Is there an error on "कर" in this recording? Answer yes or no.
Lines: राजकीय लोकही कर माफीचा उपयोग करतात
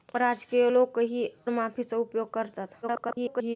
yes